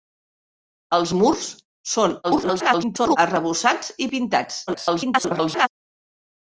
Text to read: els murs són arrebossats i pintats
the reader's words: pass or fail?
fail